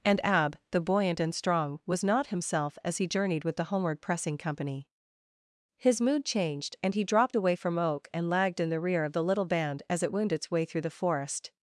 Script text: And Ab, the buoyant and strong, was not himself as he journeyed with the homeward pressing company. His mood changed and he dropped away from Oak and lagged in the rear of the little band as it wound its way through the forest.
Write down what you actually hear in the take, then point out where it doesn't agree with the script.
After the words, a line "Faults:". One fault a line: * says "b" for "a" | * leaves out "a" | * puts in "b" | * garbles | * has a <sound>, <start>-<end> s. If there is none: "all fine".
And Ab, the buoyant and strong, was not himself as he journeyed with the homeward pressing company. His mood changed and he dropped away from Oak and lagged in the rear of the little band as it wound its way through the forest.
Faults:
all fine